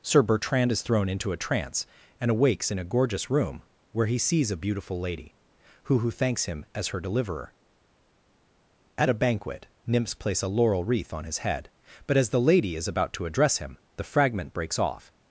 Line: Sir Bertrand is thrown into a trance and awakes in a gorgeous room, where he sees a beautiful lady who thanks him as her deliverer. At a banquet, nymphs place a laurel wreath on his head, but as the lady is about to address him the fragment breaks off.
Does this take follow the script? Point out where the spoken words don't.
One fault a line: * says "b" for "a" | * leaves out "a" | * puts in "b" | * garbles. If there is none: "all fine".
* puts in "who"